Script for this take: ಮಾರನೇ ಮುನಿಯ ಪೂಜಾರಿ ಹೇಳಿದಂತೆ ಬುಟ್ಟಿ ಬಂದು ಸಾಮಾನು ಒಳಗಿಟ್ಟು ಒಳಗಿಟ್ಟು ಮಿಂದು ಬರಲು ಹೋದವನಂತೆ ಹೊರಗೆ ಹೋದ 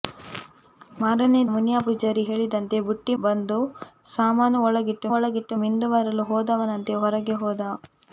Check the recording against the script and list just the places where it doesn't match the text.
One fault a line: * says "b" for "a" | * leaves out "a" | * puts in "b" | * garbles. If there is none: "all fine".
all fine